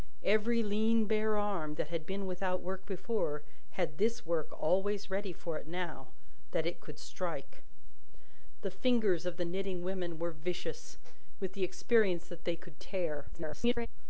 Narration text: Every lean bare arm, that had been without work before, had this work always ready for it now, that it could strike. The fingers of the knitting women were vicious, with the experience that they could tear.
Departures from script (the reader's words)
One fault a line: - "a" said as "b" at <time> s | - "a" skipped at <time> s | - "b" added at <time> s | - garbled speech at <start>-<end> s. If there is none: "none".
- garbled speech at 13.3-13.9 s